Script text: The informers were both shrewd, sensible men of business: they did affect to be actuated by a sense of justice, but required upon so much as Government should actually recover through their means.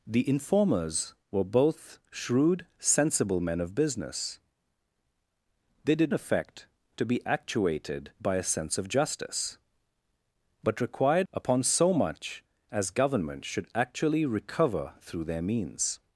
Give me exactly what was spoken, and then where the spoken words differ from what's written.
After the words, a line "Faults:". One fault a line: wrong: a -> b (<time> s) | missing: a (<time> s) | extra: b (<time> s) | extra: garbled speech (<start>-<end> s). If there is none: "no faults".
The informers were both shrewd, sensible men of business: they did affect to be actuated by a sense of justice, but required upon so much as Government should actually recover through their means.
Faults:
no faults